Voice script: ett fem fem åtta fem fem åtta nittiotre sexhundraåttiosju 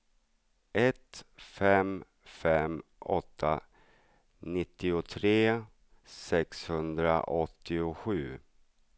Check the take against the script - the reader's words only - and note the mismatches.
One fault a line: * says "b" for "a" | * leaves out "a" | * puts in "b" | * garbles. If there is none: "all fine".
* leaves out "fem fem åtta"